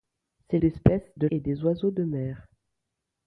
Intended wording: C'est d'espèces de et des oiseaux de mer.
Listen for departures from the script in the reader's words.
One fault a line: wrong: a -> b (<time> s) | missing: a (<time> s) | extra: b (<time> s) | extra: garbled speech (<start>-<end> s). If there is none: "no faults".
no faults